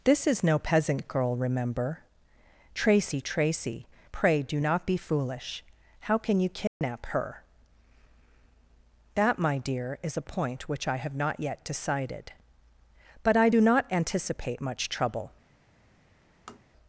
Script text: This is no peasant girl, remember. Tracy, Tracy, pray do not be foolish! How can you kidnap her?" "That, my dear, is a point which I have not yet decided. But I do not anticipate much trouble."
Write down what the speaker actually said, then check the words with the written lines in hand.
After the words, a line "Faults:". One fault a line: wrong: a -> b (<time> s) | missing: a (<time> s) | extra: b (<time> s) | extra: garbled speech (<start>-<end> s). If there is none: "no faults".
This is no peasant girl, remember. Tracy, Tracy, pray do not be foolish! How can you kidnap her?" "That, my dear, is a point which I have not yet decided. But I do not anticipate much trouble."
Faults:
no faults